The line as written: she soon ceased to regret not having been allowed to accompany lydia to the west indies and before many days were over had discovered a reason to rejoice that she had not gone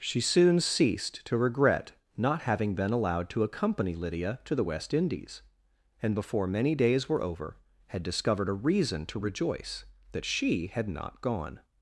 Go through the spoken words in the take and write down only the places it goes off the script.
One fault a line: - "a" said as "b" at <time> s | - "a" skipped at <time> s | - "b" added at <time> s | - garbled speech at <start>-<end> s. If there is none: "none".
none